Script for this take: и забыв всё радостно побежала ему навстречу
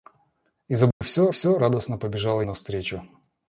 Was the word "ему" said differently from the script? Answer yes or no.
yes